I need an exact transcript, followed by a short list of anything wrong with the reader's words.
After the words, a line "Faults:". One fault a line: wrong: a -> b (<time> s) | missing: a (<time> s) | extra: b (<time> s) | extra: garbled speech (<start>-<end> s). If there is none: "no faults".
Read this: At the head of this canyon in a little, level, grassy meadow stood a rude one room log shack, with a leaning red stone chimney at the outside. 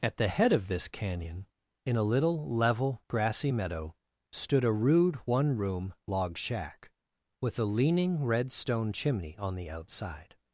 At the head of this canyon in a little, level, grassy meadow stood a rude one room log shack, with a leaning red stone chimney on the outside.
Faults:
wrong: at -> on (9.4 s)